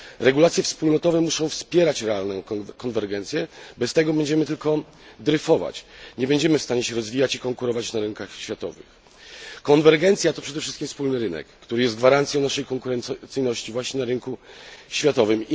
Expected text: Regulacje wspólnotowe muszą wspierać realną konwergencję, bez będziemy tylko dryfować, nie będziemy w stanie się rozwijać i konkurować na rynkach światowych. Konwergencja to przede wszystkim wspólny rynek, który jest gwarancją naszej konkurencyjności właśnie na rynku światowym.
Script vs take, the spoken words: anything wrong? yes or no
yes